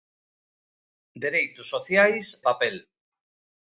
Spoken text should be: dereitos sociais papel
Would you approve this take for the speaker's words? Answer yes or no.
yes